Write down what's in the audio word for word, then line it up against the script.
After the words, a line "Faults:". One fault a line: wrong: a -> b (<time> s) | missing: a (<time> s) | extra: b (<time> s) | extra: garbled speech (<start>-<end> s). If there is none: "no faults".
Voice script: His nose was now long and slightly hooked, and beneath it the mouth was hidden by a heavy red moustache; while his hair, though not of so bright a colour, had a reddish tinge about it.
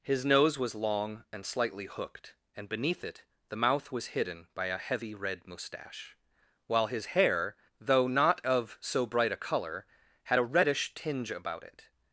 His nose was long and slightly hooked, and beneath it the mouth was hidden by a heavy red moustache; while his hair, though not of so bright a colour, had a reddish tinge about it.
Faults:
missing: now (0.7 s)